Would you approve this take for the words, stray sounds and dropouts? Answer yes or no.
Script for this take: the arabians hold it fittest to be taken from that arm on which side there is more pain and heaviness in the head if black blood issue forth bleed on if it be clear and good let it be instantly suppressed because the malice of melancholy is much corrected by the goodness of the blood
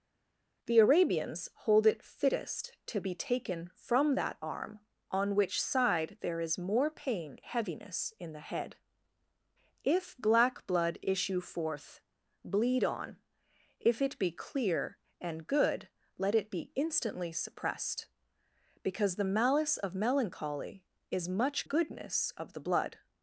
no